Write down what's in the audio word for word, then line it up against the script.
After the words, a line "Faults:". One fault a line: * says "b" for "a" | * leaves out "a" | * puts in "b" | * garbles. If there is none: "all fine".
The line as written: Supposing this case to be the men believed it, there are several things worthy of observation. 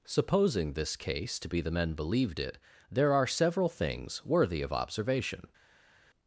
Supposing this case to be the men believed it, there are several things worthy of observation.
Faults:
all fine